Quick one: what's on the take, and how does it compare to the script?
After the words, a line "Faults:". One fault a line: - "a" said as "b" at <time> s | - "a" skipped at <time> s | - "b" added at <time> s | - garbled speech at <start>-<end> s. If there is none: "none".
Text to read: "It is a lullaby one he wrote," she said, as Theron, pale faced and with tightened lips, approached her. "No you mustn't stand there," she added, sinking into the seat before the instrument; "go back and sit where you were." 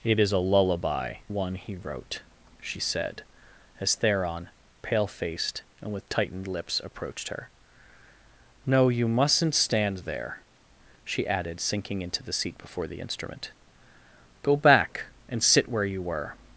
"It is a lullaby one he wrote," she said, as Theron, pale faced and with tightened lips, approached her. "No you mustn't stand there," she added, sinking into the seat before the instrument; "go back and sit where you were."
Faults:
none